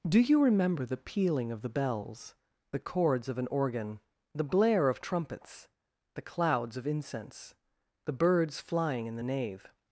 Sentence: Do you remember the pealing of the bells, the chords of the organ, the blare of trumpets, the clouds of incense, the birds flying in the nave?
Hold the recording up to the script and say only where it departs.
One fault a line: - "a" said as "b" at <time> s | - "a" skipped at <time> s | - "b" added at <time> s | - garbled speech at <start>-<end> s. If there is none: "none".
- "the" said as "an" at 3.4 s